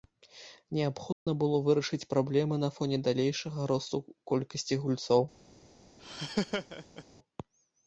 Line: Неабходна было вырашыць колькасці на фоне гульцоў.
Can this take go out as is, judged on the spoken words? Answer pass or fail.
fail